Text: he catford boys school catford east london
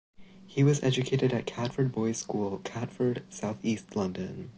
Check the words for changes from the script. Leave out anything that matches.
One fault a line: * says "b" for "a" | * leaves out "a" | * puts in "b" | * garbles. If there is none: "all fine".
* puts in "was educated at"
* puts in "south"